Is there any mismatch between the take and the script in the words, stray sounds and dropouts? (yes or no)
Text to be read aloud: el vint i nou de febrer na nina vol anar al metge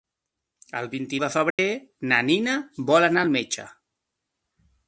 yes